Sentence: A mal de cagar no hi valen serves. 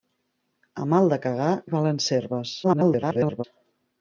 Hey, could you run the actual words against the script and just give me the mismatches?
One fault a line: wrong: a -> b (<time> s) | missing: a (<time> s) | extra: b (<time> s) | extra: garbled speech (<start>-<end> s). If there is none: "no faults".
missing: no (1.5 s)
extra: garbled speech (2.6-3.4 s)